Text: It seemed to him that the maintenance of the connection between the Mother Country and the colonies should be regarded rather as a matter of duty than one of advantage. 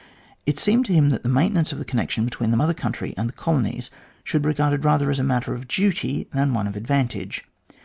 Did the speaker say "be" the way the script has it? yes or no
no